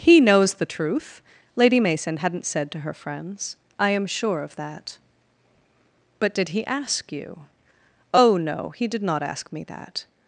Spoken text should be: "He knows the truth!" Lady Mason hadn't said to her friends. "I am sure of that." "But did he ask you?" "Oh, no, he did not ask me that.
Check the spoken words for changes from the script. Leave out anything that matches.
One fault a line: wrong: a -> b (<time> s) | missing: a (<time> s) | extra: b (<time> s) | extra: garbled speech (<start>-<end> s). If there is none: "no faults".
no faults